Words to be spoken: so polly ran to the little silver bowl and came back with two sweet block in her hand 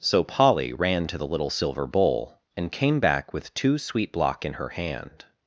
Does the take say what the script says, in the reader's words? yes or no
yes